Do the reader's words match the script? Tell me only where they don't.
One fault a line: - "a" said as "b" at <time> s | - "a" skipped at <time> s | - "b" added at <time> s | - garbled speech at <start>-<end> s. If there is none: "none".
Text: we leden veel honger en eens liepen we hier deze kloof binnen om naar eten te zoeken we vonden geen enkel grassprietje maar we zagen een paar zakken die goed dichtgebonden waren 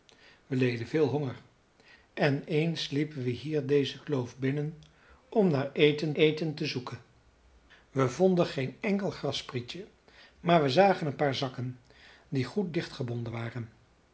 - "eten" added at 6.1 s